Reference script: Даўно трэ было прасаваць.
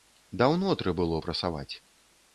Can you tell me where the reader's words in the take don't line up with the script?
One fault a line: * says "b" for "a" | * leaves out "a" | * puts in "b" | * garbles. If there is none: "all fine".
all fine